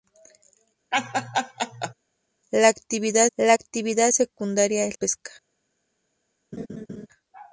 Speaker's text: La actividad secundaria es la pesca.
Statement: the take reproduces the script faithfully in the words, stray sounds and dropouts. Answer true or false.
false